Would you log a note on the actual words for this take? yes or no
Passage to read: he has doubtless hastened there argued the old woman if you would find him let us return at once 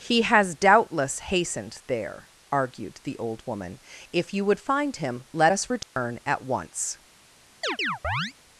no